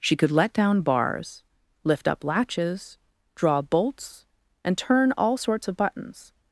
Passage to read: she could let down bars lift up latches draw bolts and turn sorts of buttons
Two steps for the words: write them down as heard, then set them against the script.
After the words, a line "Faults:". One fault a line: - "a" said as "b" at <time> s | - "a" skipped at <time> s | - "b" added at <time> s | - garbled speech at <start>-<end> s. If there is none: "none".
she could let down bars lift up latches draw bolts and turn all sorts of buttons
Faults:
- "all" added at 5.2 s